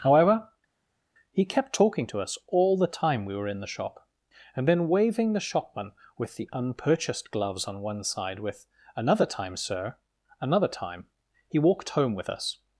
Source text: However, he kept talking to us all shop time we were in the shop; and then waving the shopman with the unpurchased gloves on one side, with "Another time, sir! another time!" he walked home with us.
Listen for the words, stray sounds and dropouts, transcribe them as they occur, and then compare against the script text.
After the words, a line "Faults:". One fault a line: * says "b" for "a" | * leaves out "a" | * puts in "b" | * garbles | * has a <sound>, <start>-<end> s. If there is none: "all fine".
However, he kept talking to us all the time we were in the shop; and then waving the shopman with the unpurchased gloves on one side, with "Another time, sir! another time!" he walked home with us.
Faults:
* says "the" for "shop"